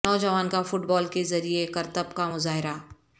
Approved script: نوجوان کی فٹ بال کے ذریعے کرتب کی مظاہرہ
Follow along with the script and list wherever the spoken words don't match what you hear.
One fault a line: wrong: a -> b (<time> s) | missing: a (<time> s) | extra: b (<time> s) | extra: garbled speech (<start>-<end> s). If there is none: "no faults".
wrong: کی -> کا (0.5 s)
wrong: کی -> کا (2.1 s)